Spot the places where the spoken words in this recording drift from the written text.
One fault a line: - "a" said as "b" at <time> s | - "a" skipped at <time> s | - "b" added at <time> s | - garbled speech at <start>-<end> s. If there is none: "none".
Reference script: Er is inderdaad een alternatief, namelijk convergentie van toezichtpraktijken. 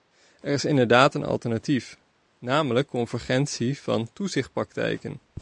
none